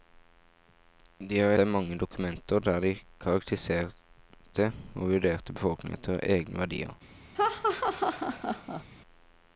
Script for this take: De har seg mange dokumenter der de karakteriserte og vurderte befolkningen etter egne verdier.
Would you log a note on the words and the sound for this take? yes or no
yes